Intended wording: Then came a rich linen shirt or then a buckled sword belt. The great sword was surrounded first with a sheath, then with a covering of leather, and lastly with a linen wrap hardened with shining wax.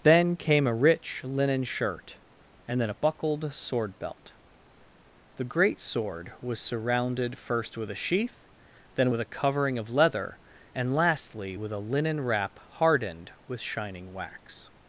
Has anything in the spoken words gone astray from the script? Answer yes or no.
yes